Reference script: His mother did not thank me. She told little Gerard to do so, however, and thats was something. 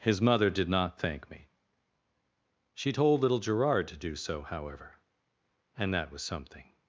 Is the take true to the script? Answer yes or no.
no